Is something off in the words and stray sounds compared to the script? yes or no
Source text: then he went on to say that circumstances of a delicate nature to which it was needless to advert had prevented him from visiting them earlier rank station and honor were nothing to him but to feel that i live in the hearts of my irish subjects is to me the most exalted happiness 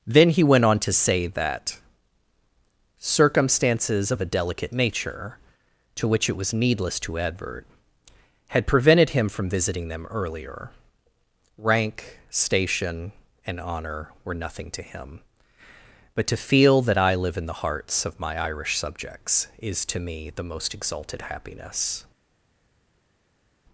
no